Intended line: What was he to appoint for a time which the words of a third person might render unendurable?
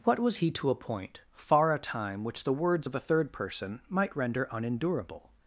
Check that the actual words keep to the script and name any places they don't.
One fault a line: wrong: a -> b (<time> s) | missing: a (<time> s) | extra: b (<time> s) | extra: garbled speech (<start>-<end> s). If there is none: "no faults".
wrong: for -> far (1.3 s)